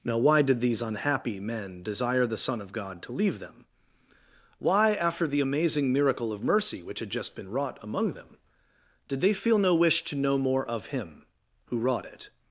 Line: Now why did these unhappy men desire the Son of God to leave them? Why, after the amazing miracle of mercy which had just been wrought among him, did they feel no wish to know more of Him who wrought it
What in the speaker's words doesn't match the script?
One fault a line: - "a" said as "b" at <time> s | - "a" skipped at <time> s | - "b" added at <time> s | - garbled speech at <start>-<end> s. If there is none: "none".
- "him" said as "them" at 8.1 s